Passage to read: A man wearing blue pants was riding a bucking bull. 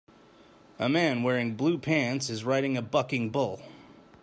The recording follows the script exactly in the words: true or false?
false